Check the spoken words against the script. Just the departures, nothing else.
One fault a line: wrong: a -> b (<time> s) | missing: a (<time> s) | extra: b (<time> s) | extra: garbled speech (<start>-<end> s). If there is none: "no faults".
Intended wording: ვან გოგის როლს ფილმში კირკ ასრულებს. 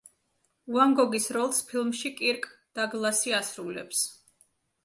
extra: დაგლასი (2.8 s)